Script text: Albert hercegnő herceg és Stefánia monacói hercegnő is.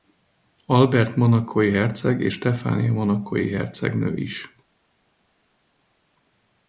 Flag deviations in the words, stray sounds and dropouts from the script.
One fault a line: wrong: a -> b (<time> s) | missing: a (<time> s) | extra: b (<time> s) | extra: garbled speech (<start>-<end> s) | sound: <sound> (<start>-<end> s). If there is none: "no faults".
wrong: hercegnő -> monacói (1.1 s)